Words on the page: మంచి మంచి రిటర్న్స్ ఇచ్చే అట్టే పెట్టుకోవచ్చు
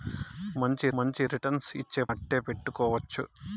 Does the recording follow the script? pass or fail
pass